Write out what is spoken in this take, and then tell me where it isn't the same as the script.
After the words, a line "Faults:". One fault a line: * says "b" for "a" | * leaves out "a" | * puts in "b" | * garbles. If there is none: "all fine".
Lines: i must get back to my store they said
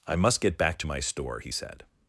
i must get back to my store he said
Faults:
* says "he" for "they"